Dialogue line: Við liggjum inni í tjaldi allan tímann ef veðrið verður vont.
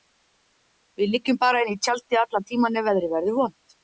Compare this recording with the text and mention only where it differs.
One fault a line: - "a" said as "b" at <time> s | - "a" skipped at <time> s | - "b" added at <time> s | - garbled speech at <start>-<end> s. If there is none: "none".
- "bara" added at 1.4 s